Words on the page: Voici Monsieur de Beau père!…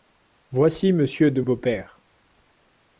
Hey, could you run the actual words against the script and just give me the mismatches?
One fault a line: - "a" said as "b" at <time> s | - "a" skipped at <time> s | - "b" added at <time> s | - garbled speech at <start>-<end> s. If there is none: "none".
none